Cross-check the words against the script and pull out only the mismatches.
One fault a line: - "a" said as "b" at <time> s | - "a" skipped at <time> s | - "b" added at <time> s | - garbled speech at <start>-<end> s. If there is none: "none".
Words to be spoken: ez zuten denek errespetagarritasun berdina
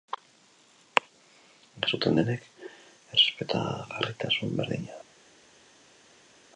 none